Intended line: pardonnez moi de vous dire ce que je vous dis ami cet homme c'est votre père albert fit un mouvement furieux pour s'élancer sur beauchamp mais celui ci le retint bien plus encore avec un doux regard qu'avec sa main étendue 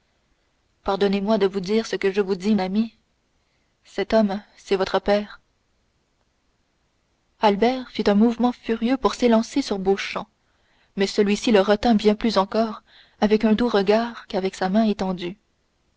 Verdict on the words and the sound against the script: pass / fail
pass